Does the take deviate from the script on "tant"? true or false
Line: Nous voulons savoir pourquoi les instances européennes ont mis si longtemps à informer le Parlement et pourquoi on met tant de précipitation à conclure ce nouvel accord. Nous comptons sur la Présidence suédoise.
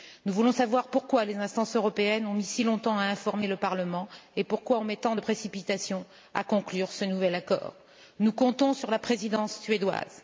false